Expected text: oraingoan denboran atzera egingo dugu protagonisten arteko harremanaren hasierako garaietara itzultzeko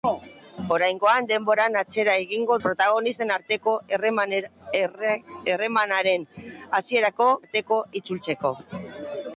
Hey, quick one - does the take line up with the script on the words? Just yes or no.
no